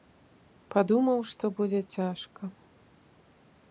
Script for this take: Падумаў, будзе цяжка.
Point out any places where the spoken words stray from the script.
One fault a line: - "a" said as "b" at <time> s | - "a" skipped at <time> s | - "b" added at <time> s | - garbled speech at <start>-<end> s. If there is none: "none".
- "што" added at 1.3 s